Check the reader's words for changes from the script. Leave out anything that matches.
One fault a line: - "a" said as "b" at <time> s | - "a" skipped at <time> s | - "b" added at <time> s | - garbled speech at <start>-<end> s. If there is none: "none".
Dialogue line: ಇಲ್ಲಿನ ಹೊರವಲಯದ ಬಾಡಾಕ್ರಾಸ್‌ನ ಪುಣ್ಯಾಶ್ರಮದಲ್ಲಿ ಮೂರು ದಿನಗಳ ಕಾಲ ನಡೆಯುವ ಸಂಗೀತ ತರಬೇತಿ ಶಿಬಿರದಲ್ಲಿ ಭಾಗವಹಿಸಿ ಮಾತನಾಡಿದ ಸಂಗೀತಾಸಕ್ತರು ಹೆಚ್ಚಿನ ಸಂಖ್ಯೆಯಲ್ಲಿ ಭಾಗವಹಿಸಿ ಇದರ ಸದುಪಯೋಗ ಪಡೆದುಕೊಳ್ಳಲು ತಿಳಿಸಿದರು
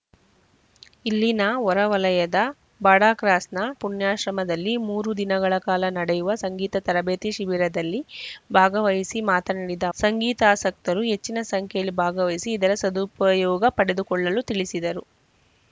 none